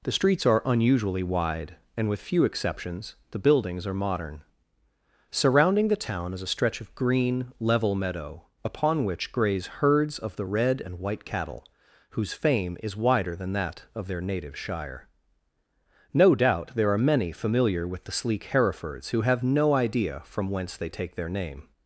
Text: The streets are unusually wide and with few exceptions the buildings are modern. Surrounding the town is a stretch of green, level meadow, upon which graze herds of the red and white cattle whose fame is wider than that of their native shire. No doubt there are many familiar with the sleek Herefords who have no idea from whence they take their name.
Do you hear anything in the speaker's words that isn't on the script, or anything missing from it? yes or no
no